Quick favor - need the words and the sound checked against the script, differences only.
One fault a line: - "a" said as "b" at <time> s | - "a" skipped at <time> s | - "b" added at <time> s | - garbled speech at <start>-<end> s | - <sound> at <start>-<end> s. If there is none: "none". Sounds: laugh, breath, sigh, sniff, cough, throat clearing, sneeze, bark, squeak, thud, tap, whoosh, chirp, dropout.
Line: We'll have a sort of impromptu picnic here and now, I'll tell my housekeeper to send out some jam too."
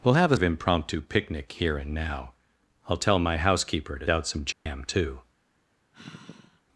- "sort" skipped at 0.4 s
- "send" skipped at 4.1 s
- dropout at 4.5-4.7 s
- sigh at 5.9-6.6 s